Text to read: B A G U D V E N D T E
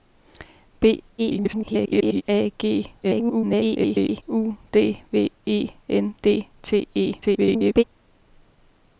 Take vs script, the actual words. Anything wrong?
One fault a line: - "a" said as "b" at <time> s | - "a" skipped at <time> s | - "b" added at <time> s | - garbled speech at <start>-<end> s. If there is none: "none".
- garbled speech at 1.2-2.2 s
- garbled speech at 3.0-4.2 s
- garbled speech at 7.2-7.8 s